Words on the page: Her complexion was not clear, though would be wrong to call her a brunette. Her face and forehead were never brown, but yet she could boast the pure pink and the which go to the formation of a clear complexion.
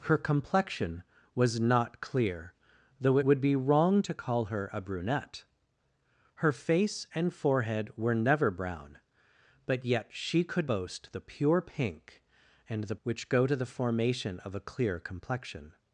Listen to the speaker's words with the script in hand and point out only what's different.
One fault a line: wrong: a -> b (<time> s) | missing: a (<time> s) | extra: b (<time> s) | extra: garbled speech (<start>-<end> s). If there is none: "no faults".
no faults